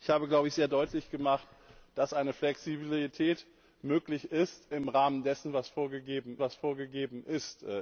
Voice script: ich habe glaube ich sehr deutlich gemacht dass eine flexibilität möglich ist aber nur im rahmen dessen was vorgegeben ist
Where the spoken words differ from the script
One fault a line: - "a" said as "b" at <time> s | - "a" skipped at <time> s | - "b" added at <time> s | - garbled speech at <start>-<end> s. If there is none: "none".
- "aber nur" skipped at 4.7 s
- "was vorgegeben" added at 6.4 s